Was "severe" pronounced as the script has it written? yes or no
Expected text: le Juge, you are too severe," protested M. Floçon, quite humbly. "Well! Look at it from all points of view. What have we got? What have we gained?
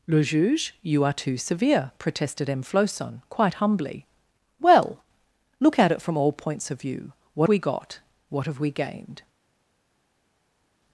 yes